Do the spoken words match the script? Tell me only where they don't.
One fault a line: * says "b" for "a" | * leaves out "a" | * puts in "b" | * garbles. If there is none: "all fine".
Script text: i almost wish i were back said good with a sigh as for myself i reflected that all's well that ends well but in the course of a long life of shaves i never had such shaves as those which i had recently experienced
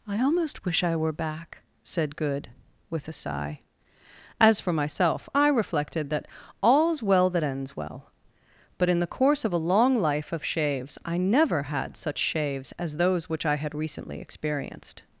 all fine